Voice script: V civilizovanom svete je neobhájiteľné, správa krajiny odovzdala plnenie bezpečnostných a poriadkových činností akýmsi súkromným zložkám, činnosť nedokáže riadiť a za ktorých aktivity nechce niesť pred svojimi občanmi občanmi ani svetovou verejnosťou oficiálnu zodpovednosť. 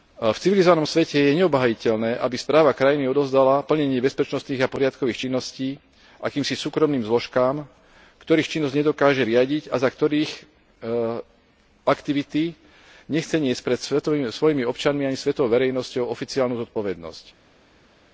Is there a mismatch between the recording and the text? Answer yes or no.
yes